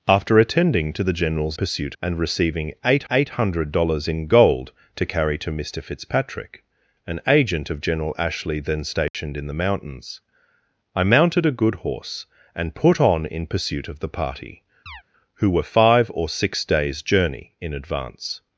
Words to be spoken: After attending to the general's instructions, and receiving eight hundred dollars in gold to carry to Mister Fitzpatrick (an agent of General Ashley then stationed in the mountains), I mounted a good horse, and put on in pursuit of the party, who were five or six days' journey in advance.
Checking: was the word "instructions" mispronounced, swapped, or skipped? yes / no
yes